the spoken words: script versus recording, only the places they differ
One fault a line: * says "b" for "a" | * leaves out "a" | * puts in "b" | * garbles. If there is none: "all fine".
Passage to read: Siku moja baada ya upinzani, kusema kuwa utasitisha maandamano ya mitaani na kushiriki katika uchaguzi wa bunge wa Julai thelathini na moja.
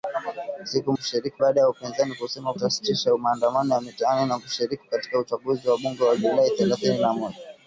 * says "kushiriki" for "moja"
* leaves out "kuwa"